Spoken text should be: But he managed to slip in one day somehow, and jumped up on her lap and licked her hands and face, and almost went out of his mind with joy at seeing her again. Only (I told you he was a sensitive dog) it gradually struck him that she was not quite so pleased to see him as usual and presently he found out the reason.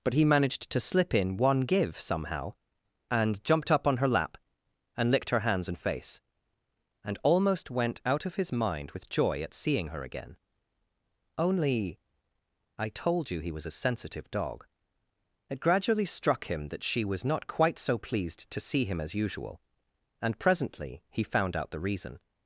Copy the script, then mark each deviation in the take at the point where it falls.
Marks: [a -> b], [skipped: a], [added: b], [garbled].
But he managed to slip in one [day -> give] somehow, and jumped up on her lap and licked her hands and face, and almost went out of his mind with joy at seeing her again. Only (I told you he was a sensitive dog) it gradually struck him that she was not quite so pleased to see him as usual and presently he found out the reason.